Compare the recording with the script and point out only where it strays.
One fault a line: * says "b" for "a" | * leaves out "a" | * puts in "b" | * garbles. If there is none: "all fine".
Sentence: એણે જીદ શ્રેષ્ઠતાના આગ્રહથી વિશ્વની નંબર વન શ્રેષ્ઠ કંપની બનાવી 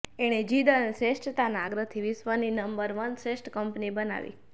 * puts in "અને"